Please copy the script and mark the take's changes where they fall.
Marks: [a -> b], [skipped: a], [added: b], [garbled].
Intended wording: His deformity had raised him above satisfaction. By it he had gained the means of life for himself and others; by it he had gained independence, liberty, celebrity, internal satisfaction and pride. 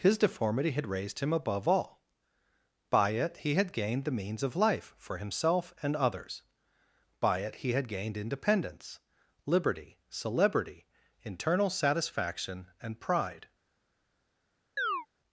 His deformity had raised him above [satisfaction. -> all] By it he had gained the means of life for himself and others; by it he had gained independence, liberty, celebrity, internal satisfaction and pride.